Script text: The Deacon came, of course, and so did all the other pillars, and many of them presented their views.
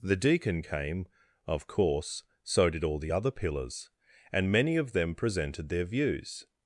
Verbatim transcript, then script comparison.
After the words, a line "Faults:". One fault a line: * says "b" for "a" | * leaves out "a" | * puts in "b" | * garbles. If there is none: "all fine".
The Deacon came, of course, so did all the other pillars, and many of them presented their views.
Faults:
* leaves out "and"